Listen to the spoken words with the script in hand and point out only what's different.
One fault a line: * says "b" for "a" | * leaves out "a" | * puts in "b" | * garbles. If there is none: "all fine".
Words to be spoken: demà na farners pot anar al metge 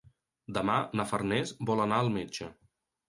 * says "vol" for "pot"